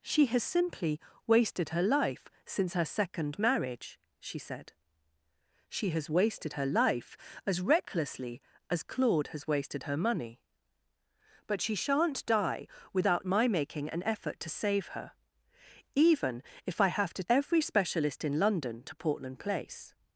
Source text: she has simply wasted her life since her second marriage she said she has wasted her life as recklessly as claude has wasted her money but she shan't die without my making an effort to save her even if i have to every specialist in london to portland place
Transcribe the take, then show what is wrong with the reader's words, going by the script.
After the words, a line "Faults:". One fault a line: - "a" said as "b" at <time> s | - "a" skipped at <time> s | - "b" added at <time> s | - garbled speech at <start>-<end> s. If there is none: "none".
she has simply wasted her life since her second marriage she said she has wasted her life as recklessly as claude has wasted her money but she shan't die without my making an effort to save her even if i have to every specialist in london to portland place
Faults:
none